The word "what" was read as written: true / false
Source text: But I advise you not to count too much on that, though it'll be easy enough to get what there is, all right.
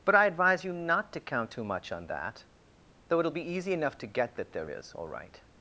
false